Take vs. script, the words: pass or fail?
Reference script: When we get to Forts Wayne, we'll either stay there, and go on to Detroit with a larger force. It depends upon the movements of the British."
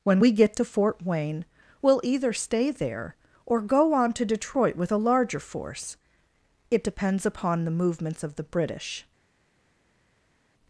fail